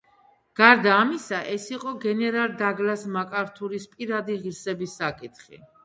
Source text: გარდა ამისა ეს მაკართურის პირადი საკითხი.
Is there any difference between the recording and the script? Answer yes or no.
yes